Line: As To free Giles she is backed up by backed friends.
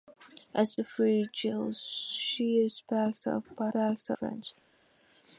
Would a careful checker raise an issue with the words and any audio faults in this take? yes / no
no